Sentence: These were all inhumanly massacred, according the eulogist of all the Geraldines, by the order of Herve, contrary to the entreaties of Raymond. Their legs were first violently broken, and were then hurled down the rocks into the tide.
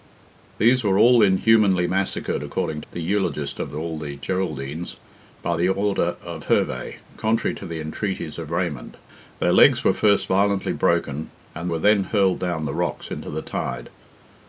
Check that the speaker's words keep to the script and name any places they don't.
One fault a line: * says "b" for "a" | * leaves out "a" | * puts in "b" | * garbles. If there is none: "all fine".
all fine